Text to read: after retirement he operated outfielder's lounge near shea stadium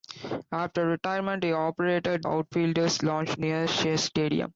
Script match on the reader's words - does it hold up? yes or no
yes